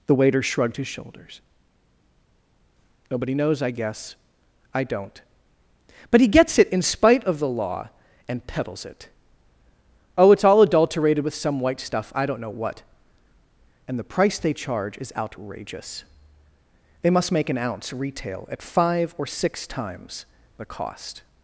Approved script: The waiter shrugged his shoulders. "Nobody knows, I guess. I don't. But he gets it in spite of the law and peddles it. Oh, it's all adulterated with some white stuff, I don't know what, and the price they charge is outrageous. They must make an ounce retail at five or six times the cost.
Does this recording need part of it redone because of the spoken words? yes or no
no